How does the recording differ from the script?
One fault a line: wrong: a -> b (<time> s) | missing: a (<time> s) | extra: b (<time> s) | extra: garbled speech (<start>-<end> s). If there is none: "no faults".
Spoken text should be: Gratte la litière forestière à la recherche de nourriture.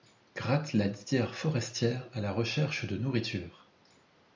no faults